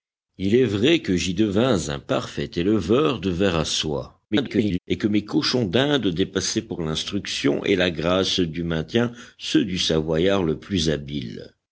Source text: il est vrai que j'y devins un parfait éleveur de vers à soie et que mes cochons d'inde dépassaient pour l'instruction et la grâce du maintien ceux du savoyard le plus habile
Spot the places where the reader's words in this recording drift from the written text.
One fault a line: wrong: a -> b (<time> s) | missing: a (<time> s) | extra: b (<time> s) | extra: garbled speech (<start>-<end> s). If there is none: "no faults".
extra: garbled speech (4.3-4.8 s)